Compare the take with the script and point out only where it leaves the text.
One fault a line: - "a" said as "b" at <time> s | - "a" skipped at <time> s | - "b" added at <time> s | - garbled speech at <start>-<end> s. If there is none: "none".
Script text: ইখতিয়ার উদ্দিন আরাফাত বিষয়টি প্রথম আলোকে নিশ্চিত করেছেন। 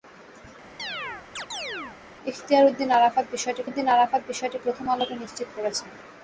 - "উদ্দিন আরাফাত বিষয়টি" added at 3.7 s